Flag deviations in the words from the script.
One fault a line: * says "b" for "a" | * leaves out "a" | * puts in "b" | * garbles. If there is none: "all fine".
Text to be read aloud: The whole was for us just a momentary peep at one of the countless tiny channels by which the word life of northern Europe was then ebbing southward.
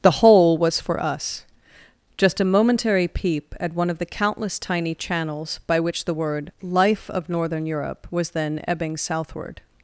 all fine